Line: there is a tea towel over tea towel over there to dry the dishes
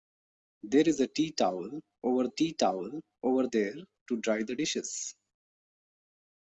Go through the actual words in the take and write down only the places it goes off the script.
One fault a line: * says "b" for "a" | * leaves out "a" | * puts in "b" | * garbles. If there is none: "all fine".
all fine